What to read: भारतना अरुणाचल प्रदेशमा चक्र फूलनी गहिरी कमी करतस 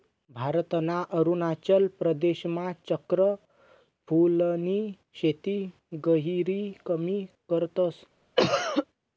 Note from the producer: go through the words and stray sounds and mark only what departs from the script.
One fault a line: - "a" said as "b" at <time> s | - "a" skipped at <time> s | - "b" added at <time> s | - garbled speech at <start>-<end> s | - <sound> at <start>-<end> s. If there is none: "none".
- "शेती" added at 5.2 s
- cough at 8.4-8.9 s